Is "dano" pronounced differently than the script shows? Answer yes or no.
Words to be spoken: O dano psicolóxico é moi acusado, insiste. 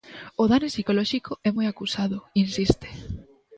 no